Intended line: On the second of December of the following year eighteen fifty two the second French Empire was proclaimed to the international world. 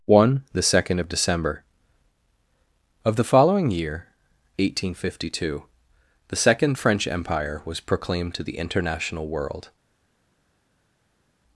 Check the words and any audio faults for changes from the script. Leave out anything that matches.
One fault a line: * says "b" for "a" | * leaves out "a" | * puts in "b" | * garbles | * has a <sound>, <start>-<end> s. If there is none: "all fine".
* says "One" for "On"